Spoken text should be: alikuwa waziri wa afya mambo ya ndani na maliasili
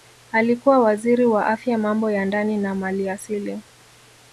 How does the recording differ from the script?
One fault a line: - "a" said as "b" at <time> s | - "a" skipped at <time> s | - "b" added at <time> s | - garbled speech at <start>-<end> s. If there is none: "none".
none